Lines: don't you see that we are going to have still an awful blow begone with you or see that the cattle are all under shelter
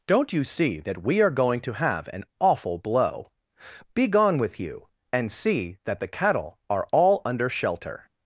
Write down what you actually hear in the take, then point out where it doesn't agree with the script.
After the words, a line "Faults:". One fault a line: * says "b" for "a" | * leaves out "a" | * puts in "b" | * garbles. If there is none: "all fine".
don't you see that we are going to have an awful blow begone with you and see that the cattle are all under shelter
Faults:
* leaves out "still"
* says "and" for "or"